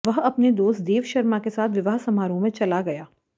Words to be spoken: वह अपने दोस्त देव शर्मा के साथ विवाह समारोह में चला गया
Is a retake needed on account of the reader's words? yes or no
no